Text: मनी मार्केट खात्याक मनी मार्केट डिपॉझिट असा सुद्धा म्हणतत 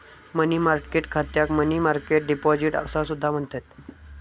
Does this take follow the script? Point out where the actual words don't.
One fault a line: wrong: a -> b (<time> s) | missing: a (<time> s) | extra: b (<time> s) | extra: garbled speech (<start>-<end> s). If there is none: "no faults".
no faults